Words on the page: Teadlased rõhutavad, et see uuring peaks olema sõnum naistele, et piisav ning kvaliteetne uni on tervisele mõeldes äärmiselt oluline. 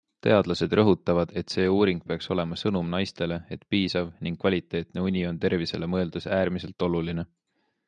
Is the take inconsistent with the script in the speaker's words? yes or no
no